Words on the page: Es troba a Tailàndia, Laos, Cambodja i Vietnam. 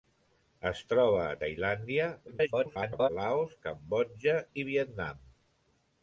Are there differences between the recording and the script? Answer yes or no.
yes